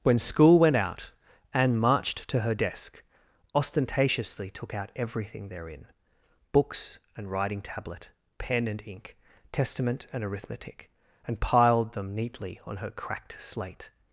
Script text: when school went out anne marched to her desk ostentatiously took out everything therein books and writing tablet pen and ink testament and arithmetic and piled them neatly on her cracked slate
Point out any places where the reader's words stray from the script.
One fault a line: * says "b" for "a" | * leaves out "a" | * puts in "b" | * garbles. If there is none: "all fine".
all fine